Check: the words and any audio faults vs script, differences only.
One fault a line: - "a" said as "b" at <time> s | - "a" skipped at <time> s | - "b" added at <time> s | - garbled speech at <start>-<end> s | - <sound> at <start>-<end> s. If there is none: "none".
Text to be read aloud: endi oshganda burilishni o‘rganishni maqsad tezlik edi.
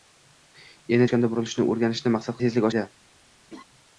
- laugh at 3.5-3.6 s